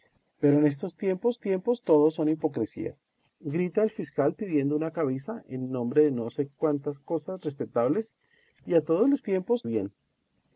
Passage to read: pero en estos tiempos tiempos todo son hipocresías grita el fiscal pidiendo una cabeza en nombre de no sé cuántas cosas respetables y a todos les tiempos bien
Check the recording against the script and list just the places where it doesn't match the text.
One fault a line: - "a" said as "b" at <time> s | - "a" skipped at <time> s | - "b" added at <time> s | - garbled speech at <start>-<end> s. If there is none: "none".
none